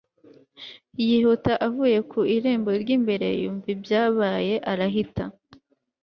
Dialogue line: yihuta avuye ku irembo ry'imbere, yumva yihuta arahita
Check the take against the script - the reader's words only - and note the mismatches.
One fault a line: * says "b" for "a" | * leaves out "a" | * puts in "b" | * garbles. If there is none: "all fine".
* says "ibyabaye" for "yihuta"